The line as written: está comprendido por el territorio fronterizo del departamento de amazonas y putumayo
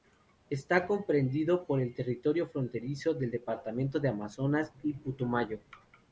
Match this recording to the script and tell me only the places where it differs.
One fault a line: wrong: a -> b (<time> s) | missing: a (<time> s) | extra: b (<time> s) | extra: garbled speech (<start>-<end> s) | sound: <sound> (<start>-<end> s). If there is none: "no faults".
no faults